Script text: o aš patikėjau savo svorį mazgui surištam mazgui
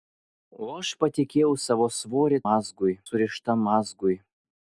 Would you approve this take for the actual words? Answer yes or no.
yes